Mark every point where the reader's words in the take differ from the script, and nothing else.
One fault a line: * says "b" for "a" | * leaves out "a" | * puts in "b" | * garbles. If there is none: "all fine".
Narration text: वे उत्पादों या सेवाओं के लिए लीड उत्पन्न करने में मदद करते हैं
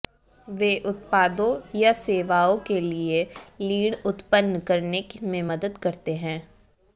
all fine